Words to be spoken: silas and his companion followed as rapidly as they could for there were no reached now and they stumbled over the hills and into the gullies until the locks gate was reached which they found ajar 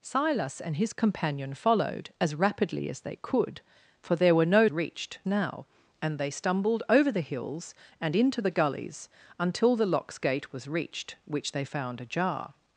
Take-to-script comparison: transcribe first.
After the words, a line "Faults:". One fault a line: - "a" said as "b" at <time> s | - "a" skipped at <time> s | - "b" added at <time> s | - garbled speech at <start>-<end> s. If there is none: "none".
silas and his companion followed as rapidly as they could for there were no reached now and they stumbled over the hills and into the gullies until the locks gate was reached which they found ajar
Faults:
none